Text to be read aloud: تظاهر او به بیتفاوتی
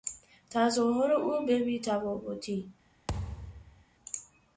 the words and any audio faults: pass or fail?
fail